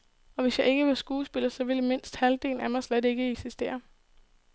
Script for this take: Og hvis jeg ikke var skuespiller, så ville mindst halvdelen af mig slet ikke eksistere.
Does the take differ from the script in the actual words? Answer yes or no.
no